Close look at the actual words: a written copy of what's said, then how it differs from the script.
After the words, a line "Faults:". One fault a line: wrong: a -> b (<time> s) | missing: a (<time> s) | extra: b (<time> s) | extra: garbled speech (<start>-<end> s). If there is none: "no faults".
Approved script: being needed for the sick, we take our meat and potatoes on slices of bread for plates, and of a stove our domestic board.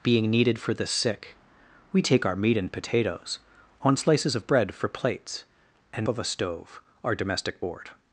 being needed for the sick, we take our meat and potatoes on slices of bread for plates, and of a stove our domestic board.
Faults:
no faults